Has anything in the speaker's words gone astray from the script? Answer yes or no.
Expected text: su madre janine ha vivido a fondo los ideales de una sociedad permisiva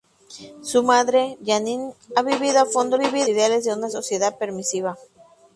yes